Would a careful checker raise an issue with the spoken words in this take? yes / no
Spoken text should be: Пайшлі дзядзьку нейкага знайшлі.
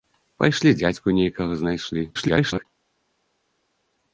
yes